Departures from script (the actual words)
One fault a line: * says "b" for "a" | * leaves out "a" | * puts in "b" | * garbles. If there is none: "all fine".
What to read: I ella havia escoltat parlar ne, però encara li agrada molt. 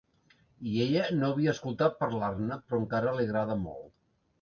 * puts in "no"